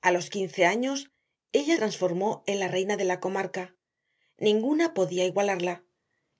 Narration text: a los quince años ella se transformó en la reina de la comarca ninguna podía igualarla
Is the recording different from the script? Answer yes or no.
yes